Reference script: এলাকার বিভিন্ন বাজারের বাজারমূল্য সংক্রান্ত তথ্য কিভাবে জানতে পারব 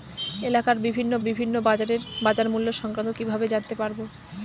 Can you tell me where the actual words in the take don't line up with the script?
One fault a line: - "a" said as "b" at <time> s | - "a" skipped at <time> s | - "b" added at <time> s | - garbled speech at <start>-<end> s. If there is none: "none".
- "বিভিন্ন" added at 1.3 s
- "তথ্য" skipped at 3.1 s